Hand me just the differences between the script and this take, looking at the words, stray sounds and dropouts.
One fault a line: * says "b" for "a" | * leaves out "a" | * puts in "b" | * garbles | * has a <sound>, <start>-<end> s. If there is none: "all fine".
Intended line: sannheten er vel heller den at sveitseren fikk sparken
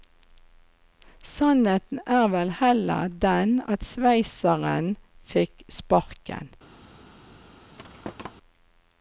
* has a thud, 7.8-8.3 s